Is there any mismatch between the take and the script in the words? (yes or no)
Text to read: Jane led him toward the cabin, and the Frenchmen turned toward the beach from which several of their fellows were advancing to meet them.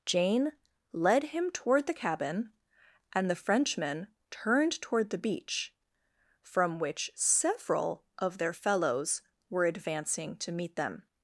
no